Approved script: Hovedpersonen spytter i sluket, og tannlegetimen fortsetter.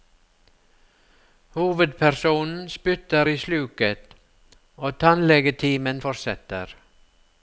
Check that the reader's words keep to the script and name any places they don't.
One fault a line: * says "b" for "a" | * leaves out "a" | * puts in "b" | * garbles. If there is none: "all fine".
all fine